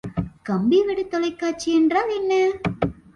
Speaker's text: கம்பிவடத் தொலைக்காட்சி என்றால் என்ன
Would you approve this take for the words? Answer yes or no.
yes